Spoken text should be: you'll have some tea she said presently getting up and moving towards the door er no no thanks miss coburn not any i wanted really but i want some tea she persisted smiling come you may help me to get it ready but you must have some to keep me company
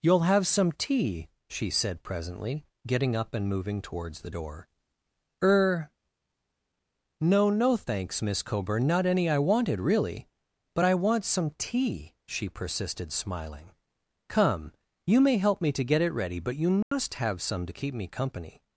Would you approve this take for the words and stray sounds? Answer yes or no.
no